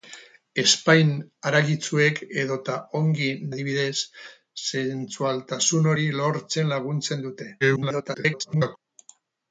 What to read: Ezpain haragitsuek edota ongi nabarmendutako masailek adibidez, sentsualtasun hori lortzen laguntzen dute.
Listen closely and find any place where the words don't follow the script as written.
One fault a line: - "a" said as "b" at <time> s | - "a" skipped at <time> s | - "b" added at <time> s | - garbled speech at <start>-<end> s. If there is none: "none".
- "nabarmendutako masailek" skipped at 3.3 s
- garbled speech at 7.6-8.8 s